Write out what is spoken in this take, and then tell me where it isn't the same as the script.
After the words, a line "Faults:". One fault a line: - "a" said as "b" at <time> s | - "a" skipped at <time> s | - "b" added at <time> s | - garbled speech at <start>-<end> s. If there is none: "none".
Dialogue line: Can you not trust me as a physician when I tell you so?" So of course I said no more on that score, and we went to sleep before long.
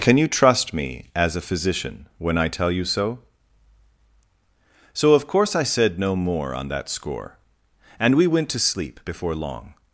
Can you trust me as a physician when I tell you so?" So of course I said no more on that score, and we went to sleep before long.
Faults:
- "not" skipped at 0.3 s